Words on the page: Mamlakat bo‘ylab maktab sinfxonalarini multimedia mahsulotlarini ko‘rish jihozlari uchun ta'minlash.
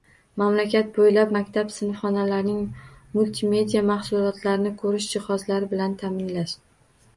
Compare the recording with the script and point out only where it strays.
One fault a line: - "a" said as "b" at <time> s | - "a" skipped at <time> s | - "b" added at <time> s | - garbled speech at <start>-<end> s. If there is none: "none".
- "uchun" said as "bilan" at 5.8 s